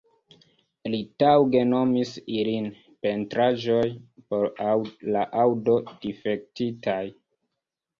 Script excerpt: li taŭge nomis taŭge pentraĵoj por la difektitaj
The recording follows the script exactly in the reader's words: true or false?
false